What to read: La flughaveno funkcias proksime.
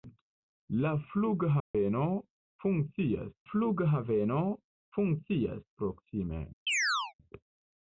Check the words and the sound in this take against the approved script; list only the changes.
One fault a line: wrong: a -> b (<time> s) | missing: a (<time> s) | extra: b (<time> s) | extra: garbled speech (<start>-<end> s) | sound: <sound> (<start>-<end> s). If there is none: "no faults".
sound: dropout (1.6-1.7 s)
extra: flughaveno funkcias (3.5 s)
sound: chirp (6.7-7.1 s)